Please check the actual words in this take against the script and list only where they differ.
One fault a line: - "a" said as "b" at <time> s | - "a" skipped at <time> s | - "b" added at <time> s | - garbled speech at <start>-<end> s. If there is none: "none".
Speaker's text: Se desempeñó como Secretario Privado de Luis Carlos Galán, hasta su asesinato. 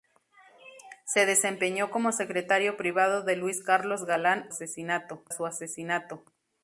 - "hasta" said as "asesinato" at 4.5 s